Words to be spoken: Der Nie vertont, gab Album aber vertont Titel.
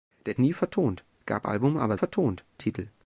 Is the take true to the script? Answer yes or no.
yes